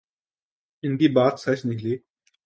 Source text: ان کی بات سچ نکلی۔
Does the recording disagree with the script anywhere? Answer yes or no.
no